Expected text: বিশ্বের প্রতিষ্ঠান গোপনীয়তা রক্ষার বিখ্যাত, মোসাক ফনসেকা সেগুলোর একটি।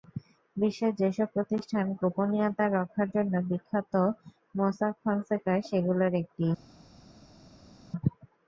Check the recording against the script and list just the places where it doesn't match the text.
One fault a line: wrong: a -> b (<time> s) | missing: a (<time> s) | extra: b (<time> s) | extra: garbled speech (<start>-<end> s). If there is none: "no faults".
extra: যেসব (1.0 s)
extra: জন্য (3.1 s)